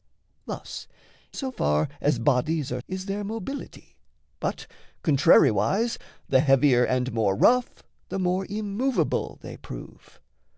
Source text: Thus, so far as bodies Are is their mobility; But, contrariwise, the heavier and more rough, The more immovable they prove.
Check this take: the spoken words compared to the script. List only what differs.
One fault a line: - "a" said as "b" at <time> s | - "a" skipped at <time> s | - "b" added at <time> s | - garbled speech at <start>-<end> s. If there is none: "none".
none